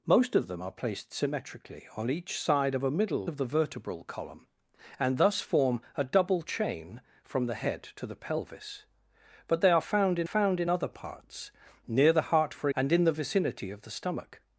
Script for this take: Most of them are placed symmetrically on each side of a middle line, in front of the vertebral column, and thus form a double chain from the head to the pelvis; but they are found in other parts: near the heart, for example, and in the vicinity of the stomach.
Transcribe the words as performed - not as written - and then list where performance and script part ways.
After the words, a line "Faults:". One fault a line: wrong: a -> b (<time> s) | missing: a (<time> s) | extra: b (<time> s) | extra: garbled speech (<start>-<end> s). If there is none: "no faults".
Most of them are placed symmetrically on each side of a middle of the vertebral column, and thus form a double chain from the head to the pelvis; but they are found in found in other parts: near the heart, for and in the vicinity of the stomach.
Faults:
missing: line in front (3.3 s)
extra: found in (10.2 s)
missing: example (12.7 s)